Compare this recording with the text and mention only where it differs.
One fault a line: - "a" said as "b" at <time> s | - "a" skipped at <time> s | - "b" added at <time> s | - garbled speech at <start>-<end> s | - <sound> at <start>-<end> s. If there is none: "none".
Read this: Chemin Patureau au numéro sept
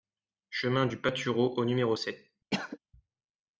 - "du" added at 0.8 s
- cough at 2.5-2.8 s